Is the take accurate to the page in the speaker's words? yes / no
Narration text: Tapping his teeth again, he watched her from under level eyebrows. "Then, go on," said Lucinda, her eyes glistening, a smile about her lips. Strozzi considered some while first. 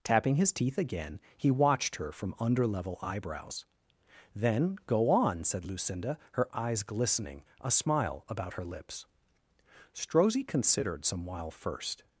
yes